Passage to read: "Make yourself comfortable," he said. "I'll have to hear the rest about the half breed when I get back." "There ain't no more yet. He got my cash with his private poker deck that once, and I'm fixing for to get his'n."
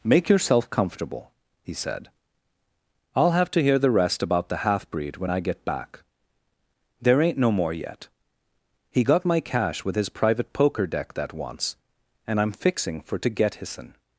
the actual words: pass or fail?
pass